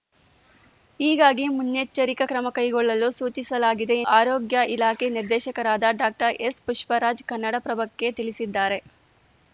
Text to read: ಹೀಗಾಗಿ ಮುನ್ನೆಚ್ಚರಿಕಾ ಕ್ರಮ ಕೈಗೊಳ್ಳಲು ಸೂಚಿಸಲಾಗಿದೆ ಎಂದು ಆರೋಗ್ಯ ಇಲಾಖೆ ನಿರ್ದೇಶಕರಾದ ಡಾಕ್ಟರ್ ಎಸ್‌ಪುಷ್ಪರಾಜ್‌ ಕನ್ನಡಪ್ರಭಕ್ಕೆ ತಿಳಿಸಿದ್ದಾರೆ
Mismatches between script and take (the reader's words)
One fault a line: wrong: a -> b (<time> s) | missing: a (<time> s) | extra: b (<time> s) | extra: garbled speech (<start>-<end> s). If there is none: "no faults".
missing: ಎಂದು (4.0 s)